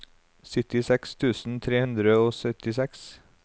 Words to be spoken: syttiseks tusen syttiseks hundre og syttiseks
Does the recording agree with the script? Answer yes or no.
no